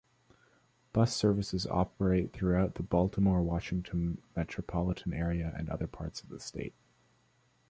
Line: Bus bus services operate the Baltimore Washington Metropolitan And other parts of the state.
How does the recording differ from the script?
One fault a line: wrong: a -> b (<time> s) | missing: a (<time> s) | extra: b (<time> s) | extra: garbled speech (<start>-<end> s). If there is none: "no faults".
missing: bus (1.1 s)
extra: throughout (2.3 s)
extra: Area (5.1 s)